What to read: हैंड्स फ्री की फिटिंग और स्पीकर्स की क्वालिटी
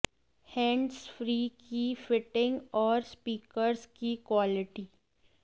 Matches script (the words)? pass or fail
pass